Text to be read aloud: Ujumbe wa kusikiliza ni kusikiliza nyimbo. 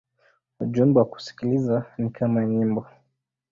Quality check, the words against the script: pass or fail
fail